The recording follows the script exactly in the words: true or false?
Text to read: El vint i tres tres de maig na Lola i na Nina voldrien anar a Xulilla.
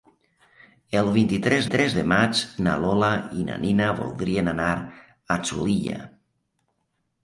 true